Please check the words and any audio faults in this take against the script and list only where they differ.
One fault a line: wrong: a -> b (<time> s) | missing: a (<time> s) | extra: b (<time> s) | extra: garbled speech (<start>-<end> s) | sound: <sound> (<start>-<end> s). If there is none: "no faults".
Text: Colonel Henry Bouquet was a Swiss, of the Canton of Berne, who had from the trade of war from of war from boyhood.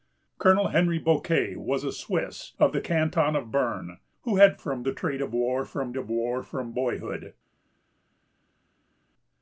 no faults